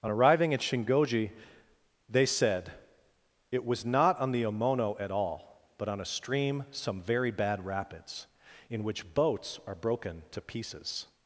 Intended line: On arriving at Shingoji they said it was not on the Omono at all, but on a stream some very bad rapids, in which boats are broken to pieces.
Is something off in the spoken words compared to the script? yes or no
no